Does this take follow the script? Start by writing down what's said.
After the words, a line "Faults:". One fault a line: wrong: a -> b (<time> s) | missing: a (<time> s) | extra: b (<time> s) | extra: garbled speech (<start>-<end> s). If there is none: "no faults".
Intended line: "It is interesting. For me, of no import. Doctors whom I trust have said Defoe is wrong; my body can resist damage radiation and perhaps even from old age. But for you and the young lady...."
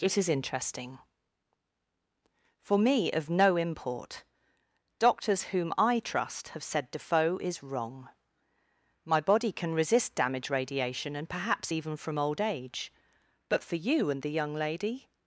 "It is interesting. For me, of no import. Doctors whom I trust have said Defoe is wrong; my body can resist damage radiation and perhaps even from old age. But for you and the young lady...."
Faults:
no faults